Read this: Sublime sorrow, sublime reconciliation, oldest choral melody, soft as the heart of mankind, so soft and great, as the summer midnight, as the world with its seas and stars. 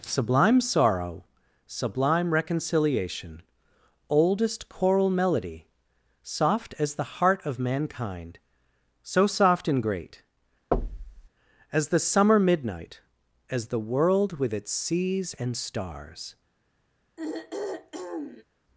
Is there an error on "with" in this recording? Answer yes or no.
no